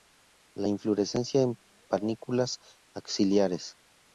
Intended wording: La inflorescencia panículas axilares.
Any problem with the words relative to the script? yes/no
yes